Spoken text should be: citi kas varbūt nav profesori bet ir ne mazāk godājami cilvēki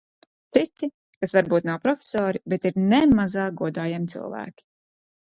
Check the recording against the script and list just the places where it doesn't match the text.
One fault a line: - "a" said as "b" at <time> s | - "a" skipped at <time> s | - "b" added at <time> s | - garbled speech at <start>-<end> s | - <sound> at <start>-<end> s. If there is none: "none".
none